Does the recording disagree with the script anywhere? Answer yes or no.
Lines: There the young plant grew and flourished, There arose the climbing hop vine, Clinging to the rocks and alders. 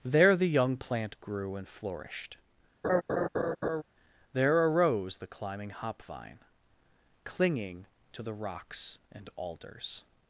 no